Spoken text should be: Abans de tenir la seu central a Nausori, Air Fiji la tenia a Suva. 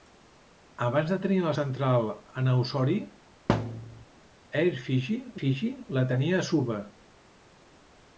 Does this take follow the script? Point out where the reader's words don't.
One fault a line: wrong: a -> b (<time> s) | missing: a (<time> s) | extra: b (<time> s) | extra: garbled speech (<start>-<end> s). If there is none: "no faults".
missing: seu (1.5 s)
extra: Fiji (5.4 s)